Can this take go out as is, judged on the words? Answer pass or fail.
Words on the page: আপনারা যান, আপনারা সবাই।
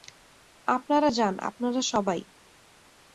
pass